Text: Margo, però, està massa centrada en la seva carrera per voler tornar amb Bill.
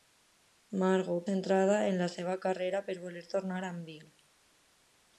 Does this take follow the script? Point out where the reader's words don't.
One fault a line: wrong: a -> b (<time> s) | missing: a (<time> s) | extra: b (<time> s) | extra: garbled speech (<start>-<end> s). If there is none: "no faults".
missing: però està massa (1.2 s)